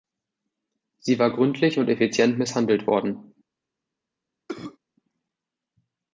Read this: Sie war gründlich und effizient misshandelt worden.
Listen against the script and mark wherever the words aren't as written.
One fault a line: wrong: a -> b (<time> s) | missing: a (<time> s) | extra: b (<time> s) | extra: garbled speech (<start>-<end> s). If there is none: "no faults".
no faults